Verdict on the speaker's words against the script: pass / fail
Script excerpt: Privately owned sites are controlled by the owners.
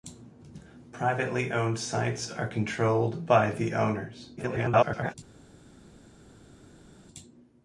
fail